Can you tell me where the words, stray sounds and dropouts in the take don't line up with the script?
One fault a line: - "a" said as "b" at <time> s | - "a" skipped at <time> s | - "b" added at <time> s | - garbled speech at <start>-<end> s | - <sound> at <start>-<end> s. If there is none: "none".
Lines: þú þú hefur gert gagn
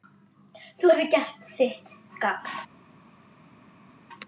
- "þú" skipped at 0.9 s
- "þitt" added at 1.6 s